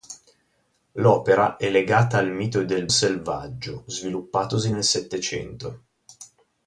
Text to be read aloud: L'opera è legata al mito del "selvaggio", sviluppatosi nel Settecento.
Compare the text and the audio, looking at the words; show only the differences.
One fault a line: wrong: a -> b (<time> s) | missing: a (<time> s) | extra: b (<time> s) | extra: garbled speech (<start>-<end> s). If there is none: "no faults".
no faults